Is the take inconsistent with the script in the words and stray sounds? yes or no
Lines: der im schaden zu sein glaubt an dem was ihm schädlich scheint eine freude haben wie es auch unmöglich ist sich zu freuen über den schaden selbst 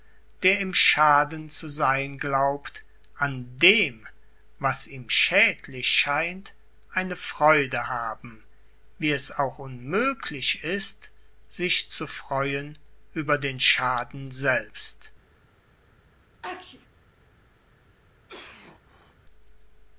yes